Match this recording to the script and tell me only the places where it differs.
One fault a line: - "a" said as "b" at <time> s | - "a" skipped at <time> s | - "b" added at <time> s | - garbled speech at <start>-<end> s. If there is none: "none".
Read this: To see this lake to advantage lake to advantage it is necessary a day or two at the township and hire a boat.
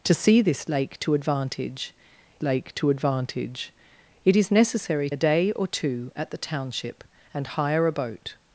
none